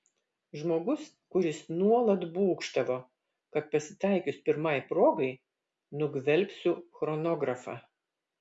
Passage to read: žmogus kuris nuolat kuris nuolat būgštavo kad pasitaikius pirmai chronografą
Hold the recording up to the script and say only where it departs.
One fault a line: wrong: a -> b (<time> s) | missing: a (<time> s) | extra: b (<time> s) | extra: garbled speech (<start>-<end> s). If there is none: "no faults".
missing: kuris nuolat (2.2 s)
extra: progai nugvelbsiu (4.9 s)